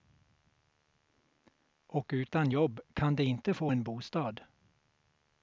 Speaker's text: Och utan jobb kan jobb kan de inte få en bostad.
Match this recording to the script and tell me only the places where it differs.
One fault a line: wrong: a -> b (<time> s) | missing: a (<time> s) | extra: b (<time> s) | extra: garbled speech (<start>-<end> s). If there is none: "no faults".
missing: jobb kan (3.2 s)